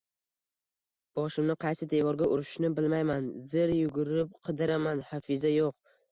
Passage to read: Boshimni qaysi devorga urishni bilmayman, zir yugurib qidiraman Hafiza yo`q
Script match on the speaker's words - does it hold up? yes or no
yes